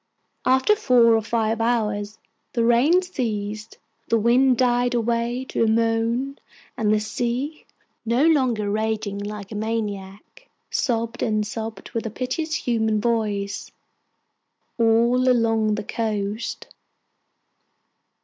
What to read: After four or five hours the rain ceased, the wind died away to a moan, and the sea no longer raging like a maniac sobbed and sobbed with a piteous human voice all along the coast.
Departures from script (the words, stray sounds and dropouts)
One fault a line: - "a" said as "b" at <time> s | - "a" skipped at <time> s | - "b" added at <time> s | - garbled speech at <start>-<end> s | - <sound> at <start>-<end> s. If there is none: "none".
none